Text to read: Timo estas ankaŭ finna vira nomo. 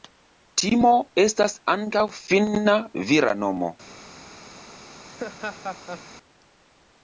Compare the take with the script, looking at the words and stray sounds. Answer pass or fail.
fail